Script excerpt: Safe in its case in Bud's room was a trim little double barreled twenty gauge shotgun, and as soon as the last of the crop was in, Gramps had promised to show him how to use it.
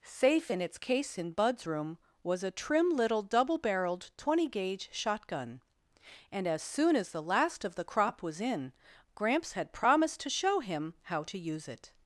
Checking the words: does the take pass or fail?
pass